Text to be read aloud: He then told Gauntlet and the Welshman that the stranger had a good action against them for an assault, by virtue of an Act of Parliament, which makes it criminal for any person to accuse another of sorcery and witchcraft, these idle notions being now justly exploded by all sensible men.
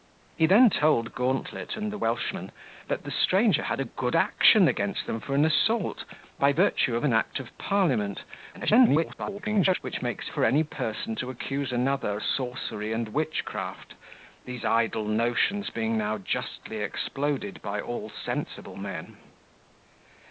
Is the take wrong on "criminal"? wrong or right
wrong